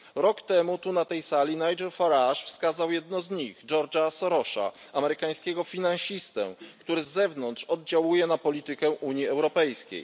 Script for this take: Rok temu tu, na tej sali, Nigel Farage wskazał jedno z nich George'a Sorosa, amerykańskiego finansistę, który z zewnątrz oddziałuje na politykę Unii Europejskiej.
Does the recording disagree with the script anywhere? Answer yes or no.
no